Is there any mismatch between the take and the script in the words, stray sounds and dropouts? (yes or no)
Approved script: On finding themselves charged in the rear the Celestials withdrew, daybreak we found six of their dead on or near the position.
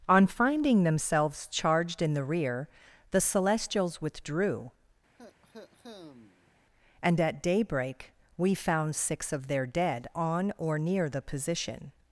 yes